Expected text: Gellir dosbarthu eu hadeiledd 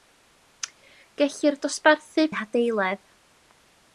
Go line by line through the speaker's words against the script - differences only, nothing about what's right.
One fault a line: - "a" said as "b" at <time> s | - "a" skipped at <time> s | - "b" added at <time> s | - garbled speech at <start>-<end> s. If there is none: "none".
none